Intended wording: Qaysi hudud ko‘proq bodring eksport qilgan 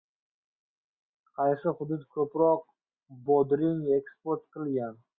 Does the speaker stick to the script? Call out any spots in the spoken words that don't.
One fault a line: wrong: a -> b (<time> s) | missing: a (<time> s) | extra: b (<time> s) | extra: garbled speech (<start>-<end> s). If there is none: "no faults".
no faults